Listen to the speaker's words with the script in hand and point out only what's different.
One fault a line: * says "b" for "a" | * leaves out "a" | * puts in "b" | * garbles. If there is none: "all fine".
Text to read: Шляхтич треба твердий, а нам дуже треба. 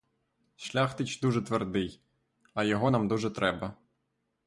* says "дуже" for "треба"
* puts in "його"